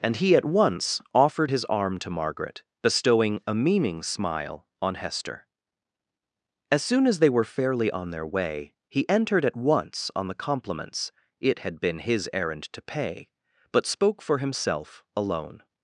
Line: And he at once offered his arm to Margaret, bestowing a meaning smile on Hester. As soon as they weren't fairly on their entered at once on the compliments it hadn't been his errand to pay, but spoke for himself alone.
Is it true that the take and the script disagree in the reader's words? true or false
true